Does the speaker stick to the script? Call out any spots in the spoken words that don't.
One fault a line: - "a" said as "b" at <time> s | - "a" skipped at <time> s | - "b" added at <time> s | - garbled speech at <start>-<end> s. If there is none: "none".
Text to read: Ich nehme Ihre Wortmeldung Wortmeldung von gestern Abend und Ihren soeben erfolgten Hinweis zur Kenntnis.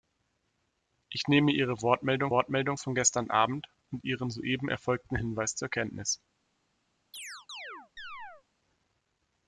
none